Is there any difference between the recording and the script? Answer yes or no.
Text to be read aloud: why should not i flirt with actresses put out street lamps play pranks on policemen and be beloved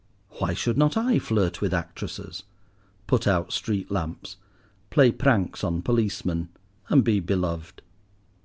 no